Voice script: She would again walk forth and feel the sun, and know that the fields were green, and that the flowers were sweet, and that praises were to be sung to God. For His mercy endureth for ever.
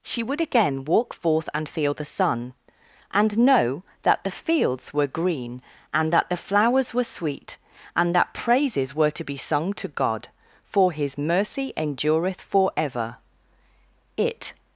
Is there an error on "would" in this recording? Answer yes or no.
no